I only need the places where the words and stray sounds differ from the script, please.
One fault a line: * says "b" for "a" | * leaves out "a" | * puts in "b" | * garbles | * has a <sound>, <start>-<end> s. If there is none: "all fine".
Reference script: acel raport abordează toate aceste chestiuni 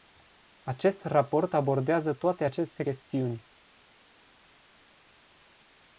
* says "acest" for "acel"